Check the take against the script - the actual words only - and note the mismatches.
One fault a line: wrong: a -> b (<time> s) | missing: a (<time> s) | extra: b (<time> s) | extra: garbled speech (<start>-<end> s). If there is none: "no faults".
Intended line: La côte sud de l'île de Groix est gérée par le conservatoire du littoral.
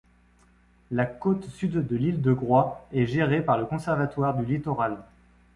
no faults